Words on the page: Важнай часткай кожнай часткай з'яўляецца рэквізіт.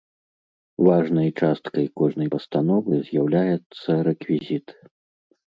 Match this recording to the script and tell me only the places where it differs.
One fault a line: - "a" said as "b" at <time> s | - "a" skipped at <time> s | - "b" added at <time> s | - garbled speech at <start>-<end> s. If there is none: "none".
- "часткай" said as "пастановы" at 2.3 s